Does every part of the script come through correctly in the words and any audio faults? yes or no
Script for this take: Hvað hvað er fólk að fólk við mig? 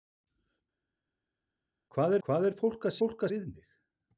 yes